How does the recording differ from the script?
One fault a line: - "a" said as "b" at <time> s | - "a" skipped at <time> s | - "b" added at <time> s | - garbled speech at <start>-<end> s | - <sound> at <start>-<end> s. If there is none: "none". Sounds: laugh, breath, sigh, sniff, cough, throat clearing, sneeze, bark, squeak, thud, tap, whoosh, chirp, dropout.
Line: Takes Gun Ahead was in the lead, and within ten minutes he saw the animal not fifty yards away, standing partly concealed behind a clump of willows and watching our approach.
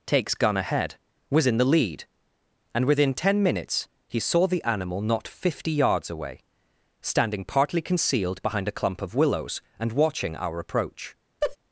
- laugh at 11.4-11.6 s